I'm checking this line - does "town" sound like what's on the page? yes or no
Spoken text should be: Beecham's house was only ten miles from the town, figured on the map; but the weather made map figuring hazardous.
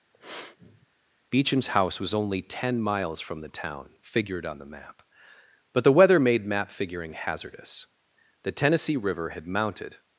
yes